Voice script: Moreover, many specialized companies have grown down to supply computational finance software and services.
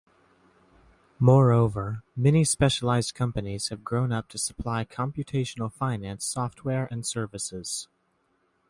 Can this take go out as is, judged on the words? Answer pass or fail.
fail